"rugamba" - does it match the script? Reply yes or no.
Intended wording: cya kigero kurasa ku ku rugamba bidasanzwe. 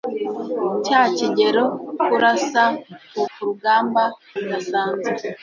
yes